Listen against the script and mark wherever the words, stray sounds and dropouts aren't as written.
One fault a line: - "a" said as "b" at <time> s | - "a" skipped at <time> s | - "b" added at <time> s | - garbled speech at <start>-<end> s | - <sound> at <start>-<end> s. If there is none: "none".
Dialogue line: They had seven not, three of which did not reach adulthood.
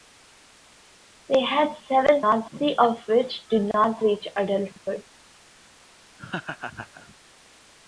- laugh at 6.2-7.2 s